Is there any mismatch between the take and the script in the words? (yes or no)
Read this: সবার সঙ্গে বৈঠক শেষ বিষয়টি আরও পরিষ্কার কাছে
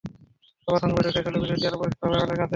yes